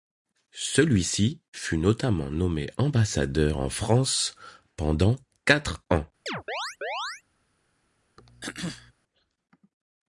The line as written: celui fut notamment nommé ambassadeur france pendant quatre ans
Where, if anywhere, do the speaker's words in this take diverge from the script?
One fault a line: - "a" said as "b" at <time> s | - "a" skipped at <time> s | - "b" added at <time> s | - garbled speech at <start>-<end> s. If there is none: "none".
- "ci" added at 1.0 s
- "en" added at 3.6 s